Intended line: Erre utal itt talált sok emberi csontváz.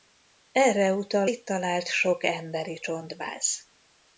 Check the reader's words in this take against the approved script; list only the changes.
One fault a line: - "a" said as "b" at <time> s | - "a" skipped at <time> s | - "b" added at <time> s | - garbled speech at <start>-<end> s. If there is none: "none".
none